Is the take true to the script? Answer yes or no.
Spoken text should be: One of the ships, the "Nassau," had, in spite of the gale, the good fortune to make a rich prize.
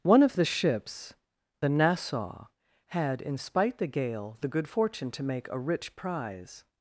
no